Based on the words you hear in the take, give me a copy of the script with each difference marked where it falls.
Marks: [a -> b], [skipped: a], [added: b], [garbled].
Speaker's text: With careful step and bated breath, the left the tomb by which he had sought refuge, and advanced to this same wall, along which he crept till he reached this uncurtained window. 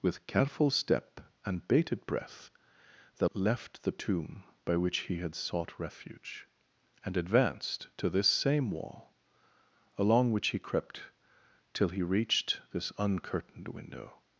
With careful step and bated breath, the left the tomb by which he had sought refuge, and advanced to this same wall, along which he crept till he reached this uncurtained window.